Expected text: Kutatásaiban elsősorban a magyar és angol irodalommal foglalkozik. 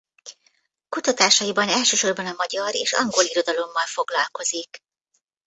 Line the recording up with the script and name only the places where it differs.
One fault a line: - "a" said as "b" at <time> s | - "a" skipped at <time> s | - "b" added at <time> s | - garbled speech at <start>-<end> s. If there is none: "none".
none